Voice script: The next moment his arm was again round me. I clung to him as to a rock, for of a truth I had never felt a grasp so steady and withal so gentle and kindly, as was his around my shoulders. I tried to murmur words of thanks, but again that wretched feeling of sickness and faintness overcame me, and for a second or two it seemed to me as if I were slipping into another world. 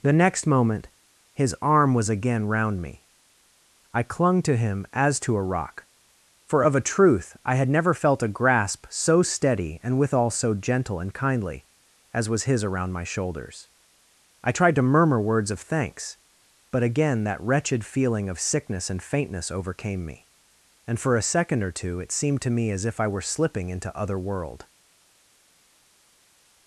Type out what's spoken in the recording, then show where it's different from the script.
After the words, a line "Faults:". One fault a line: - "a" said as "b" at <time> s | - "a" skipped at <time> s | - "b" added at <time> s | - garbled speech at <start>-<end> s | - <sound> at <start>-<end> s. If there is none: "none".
The next moment his arm was again round me. I clung to him as to a rock, for of a truth I had never felt a grasp so steady and withal so gentle and kindly, as was his around my shoulders. I tried to murmur words of thanks, but again that wretched feeling of sickness and faintness overcame me, and for a second or two it seemed to me as if I were slipping into other world.
Faults:
- "another" said as "other" at 23.9 s